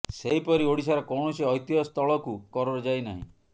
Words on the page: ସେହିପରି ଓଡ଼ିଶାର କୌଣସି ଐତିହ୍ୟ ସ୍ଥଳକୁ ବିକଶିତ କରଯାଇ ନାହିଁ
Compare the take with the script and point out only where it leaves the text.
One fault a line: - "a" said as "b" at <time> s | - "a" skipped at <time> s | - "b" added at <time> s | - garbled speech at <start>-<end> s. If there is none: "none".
- "ବିକଶିତ" skipped at 2.4 s